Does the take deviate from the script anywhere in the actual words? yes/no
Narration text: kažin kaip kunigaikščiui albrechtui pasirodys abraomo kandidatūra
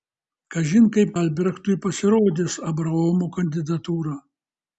yes